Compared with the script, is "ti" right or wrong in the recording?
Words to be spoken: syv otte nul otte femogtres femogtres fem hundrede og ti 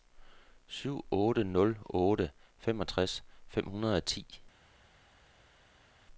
right